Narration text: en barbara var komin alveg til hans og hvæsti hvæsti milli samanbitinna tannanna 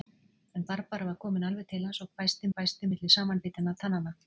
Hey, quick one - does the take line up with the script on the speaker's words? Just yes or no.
yes